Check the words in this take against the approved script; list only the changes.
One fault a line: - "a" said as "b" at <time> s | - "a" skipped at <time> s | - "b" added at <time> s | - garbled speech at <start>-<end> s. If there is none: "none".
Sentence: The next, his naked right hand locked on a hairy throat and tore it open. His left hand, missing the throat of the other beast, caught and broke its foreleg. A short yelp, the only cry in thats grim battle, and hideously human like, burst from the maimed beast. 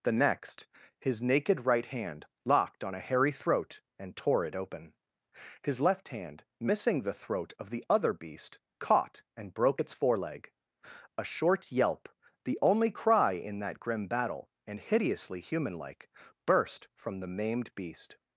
- "thats" said as "that" at 13.6 s